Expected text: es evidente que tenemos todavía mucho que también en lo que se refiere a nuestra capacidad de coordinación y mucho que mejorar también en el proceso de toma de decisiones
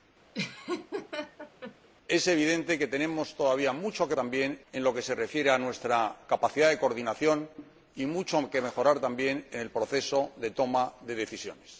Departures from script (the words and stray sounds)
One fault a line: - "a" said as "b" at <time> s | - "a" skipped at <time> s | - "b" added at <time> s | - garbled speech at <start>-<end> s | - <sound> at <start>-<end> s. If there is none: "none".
- laugh at 0.3-1.9 s